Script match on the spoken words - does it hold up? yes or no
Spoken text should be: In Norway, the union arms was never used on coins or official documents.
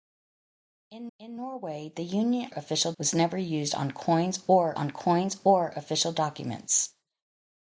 no